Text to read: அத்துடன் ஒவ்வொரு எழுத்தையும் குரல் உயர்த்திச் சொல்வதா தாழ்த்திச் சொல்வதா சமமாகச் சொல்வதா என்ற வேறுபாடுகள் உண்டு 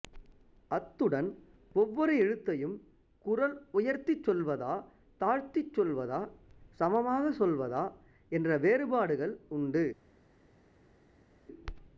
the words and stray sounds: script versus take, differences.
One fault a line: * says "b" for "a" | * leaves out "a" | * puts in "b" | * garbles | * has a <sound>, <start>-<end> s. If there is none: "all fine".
all fine